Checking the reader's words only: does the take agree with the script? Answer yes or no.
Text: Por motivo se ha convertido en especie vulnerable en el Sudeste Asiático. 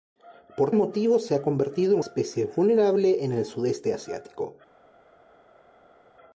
yes